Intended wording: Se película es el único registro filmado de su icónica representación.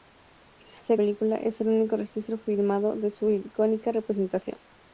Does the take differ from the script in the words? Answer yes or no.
no